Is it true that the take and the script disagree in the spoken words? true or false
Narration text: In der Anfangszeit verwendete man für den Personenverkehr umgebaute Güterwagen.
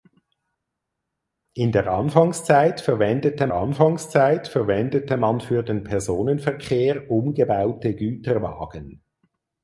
true